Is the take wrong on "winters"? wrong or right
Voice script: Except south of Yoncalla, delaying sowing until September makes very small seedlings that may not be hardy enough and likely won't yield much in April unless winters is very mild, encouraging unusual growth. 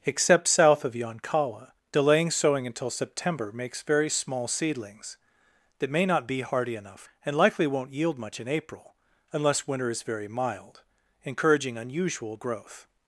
wrong